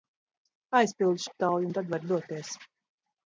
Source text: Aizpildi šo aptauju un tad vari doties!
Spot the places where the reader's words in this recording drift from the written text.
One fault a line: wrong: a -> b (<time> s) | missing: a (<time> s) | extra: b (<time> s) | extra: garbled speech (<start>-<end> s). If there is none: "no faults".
missing: šo (1.2 s)